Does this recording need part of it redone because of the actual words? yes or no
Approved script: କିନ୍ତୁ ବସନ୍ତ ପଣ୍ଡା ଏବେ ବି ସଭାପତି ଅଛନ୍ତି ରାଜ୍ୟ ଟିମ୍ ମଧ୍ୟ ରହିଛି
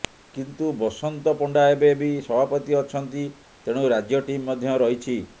yes